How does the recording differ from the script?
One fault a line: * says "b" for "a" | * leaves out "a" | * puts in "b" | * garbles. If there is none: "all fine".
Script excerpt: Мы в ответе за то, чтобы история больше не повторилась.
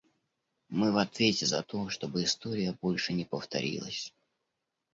all fine